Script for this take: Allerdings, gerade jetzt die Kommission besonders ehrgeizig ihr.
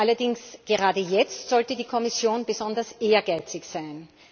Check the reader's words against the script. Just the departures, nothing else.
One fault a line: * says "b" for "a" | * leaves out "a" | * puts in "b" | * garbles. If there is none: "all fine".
* puts in "sollte"
* says "sein" for "ihr"